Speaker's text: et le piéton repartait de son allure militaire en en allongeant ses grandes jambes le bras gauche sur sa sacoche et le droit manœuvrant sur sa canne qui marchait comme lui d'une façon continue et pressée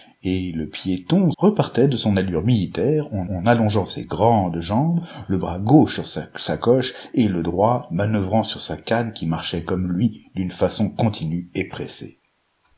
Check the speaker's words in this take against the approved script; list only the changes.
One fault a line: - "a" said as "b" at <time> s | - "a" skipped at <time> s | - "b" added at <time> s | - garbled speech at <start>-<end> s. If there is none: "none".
none